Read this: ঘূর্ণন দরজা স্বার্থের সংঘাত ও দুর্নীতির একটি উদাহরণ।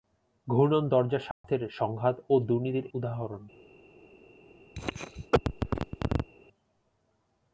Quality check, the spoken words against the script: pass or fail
fail